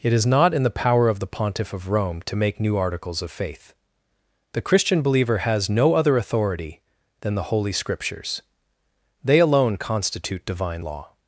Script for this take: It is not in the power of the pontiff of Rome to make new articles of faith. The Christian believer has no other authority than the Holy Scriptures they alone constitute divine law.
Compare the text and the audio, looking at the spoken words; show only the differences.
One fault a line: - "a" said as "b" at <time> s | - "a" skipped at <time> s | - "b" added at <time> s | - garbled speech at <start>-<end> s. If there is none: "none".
none